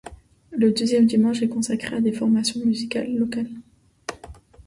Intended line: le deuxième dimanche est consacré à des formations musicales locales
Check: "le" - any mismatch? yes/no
no